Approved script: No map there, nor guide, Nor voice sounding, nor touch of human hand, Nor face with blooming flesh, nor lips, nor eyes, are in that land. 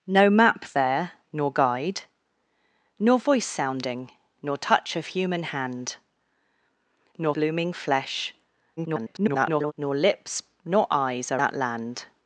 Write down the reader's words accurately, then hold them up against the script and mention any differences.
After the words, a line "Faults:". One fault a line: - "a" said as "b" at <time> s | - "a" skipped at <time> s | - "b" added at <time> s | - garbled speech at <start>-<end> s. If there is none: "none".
No map there, nor guide, Nor voice sounding, nor touch of human hand, Nor blooming flesh, [garbled] nor lips, nor eyes, are that land.
Faults:
- "face with" skipped at 7.3 s
- garbled speech at 8.8-9.7 s
- "in" skipped at 11.4 s